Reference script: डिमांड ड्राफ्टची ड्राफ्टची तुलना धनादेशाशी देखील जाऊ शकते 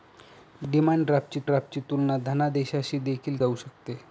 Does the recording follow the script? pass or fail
pass